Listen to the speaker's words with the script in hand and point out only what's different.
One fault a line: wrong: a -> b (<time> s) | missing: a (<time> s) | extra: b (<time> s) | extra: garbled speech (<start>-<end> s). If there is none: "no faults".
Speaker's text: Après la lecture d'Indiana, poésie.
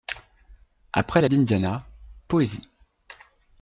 missing: lecture (1.3 s)